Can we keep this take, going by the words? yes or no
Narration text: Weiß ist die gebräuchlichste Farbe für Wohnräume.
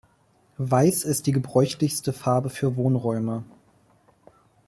yes